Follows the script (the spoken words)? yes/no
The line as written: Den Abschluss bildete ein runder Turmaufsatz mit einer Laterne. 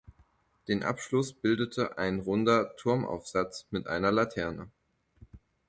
yes